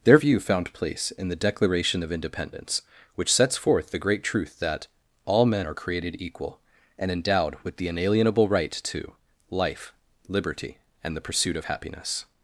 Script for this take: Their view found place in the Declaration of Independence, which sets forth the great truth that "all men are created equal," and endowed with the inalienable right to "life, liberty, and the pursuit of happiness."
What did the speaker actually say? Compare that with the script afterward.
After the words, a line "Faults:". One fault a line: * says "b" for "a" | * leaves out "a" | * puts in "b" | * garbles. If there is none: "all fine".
Their view found place in the Declaration of Independence, which sets forth the great truth that "all men are created equal," and endowed with the inalienable right to "life, liberty, and the pursuit of happiness."
Faults:
all fine